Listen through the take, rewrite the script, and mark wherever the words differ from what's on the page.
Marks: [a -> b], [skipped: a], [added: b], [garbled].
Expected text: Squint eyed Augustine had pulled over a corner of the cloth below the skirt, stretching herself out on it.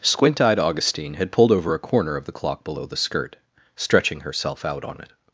Squint eyed Augustine had pulled over a corner of the [cloth -> clock] below the skirt, stretching herself out on it.